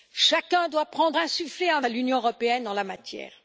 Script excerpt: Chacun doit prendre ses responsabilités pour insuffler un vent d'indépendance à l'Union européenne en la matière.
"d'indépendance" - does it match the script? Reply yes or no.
no